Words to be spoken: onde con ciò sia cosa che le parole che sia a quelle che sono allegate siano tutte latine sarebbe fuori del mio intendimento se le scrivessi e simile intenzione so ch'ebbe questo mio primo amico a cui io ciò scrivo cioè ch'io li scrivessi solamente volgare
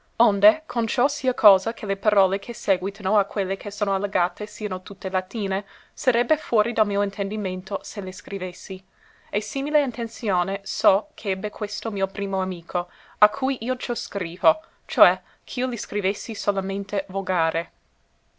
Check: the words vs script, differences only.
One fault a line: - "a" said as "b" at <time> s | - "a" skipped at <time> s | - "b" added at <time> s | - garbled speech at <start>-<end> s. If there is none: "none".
- "sia" said as "sèguitano" at 2.5 s